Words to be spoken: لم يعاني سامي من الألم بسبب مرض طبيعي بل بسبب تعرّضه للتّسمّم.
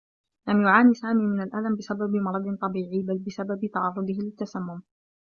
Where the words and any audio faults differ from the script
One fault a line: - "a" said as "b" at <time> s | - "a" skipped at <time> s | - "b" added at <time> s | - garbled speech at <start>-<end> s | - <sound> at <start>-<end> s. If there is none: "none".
none